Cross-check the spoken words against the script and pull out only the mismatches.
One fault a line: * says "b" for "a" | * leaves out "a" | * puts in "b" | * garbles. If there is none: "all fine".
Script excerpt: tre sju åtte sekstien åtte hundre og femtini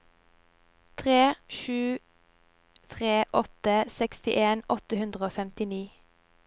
* puts in "tre"